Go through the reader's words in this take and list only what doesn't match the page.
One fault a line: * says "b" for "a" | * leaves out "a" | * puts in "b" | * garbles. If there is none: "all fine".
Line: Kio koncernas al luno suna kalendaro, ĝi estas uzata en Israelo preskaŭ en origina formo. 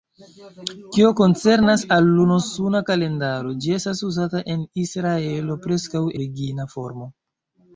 * leaves out "en"